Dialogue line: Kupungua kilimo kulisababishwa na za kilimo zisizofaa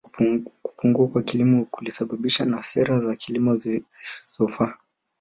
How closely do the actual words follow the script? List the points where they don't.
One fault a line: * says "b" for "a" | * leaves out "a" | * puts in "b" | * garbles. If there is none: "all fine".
* puts in "kwa"
* puts in "sera"